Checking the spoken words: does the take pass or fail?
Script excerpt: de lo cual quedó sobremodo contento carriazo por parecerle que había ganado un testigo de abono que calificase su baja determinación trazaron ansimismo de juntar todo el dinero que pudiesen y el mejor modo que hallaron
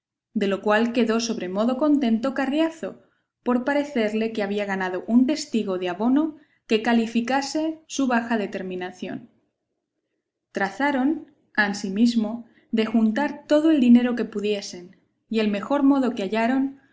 pass